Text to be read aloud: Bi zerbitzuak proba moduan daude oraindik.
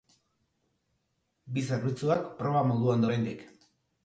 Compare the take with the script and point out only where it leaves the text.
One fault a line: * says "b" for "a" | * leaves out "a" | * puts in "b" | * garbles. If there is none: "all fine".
* leaves out "daude"